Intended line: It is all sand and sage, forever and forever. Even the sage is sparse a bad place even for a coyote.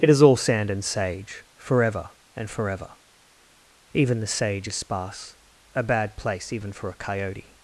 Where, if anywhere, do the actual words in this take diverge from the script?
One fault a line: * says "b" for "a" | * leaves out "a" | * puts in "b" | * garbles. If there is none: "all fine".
all fine